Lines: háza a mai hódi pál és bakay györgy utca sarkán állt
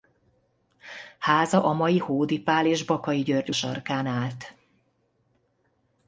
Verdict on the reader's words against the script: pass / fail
fail